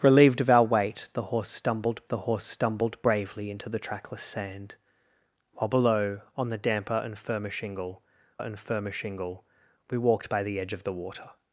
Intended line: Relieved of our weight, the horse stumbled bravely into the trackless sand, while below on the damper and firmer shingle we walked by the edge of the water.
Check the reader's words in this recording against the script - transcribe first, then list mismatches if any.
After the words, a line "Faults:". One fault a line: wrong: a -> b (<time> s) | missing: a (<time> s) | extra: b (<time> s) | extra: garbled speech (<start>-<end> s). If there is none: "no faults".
Relieved of our weight, the horse stumbled the horse stumbled bravely into the trackless sand, while below on the damper and firmer shingle and firmer shingle we walked by the edge of the water.
Faults:
extra: the horse stumbled (2.1 s)
extra: and firmer shingle (8.4 s)